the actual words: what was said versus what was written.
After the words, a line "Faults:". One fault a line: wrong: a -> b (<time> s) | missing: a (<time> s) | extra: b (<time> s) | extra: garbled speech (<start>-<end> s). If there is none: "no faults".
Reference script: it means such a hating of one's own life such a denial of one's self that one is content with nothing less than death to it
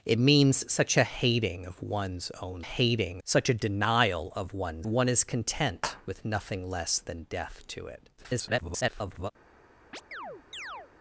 it means such a hating of one's own hating such a denial of one's one is content with nothing less than death to it [garbled]
Faults:
wrong: life -> hating (2.6 s)
missing: self that (4.9 s)
extra: garbled speech (8.2-9.3 s)